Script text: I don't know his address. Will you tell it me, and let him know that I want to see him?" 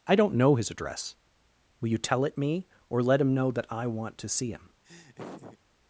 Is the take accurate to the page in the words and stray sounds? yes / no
no